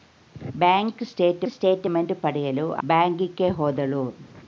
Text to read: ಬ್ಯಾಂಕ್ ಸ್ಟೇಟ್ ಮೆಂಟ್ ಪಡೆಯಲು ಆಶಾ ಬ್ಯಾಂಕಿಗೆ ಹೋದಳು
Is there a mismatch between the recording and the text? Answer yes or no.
yes